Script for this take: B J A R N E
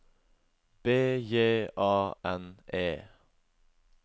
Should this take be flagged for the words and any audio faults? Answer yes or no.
yes